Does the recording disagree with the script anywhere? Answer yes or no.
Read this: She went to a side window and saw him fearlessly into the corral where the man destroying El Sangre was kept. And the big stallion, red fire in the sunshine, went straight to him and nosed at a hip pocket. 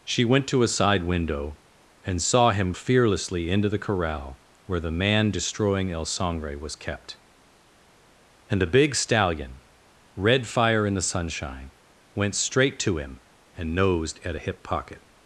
no